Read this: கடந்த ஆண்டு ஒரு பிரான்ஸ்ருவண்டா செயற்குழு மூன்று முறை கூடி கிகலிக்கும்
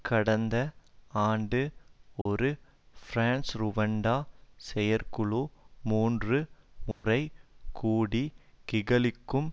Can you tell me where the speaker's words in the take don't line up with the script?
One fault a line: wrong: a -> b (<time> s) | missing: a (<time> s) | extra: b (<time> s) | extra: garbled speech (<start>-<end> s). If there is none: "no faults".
no faults